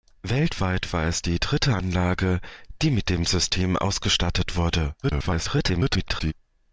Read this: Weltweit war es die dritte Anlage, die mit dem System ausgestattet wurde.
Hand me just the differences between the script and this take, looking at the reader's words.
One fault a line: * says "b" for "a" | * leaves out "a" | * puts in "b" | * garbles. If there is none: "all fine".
* garbles